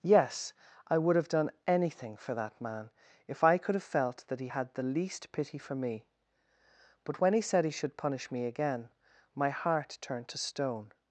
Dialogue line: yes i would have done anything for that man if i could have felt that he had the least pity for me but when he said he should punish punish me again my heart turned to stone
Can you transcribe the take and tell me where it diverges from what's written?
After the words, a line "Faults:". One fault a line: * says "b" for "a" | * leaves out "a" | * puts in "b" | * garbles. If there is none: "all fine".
yes i would have done anything for that man if i could have felt that he had the least pity for me but when he said he should punish me again my heart turned to stone
Faults:
* leaves out "punish"